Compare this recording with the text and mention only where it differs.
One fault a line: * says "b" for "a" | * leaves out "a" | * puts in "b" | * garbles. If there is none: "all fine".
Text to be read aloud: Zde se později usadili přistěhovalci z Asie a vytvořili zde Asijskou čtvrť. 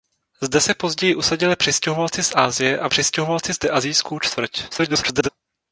* says "přistěhovalci" for "vytvořili"
* garbles